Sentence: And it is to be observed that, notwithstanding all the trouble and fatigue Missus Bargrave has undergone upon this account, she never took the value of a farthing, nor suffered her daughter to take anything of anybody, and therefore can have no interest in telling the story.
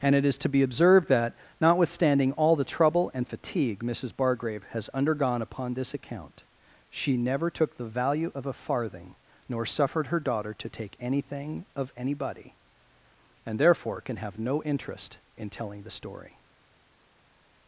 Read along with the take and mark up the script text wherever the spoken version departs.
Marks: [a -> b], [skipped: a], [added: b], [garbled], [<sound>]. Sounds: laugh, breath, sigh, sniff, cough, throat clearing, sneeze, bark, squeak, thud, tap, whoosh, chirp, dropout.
And it is to be observed that, notwithstanding all the trouble and fatigue Missus Bargrave has undergone upon this account, she never took the value of a farthing, nor suffered her daughter to take anything of anybody, and therefore can have no interest in telling the story.